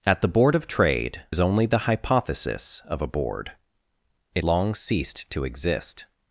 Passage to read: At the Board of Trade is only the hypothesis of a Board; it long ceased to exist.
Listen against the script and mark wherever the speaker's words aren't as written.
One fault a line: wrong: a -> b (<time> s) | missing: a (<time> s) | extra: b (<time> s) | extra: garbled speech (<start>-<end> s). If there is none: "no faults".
no faults